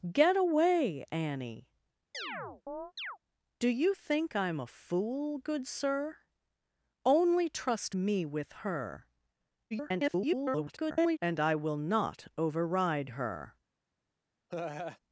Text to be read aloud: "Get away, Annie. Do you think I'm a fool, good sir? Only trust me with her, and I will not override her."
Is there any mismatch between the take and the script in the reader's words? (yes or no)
yes